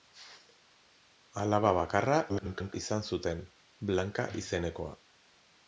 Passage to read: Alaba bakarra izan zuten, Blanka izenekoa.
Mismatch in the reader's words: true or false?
true